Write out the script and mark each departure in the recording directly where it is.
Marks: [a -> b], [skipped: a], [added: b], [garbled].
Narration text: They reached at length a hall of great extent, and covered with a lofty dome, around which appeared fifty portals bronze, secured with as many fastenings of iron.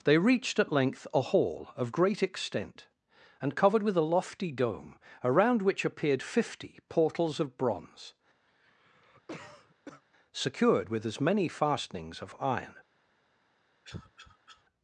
They reached at length a hall of great extent, and covered with a lofty dome, around which appeared fifty portals [added: of] bronze, secured with as many fastenings of iron.